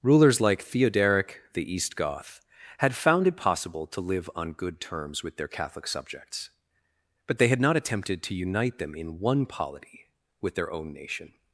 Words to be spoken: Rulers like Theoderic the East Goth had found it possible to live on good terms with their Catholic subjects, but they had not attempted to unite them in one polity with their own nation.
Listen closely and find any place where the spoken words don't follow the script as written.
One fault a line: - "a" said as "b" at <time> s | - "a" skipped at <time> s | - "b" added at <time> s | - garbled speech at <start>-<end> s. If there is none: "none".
none